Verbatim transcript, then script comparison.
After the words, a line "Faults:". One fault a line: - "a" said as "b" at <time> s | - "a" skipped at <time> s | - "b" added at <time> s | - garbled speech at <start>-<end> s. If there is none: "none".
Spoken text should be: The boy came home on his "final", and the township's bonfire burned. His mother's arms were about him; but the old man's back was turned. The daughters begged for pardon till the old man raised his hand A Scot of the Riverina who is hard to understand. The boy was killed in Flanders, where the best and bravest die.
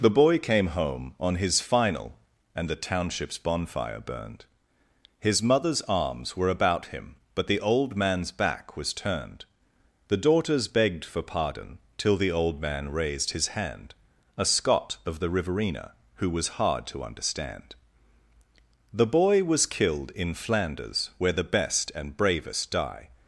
The boy came home on his "final", and the township's bonfire burned. His mother's arms were about him; but the old man's back was turned. The daughters begged for pardon till the old man raised his hand A Scot of the Riverina who was hard to understand. The boy was killed in Flanders, where the best and bravest die.
Faults:
- "is" said as "was" at 16.3 s